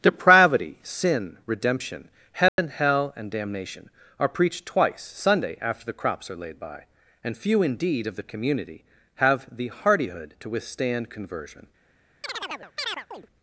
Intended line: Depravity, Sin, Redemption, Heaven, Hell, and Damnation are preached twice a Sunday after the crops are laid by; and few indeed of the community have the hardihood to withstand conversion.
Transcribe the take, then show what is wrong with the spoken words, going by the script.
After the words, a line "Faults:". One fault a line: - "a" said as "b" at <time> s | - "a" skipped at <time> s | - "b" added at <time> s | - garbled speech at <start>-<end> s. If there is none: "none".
Depravity, Sin, Redemption, Heaven, Hell, and Damnation are preached twice Sunday after the crops are laid by; and few indeed of the community have the hardihood to withstand conversion.
Faults:
- "a" skipped at 5.0 s